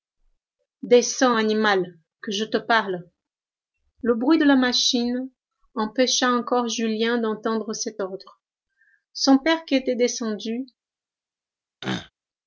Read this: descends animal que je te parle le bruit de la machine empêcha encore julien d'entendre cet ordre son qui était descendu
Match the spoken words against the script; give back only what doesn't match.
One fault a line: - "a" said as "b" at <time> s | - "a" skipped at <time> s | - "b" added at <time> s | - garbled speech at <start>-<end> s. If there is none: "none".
- "père" added at 9.4 s